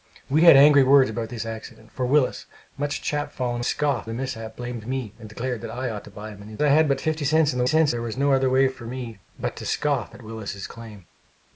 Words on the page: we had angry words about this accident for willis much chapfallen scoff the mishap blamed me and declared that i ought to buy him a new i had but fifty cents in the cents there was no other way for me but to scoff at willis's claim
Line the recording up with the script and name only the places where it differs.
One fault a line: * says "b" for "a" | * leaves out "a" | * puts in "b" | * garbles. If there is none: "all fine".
all fine